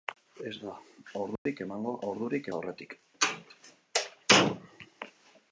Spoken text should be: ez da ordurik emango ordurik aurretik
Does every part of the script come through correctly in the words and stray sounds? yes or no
no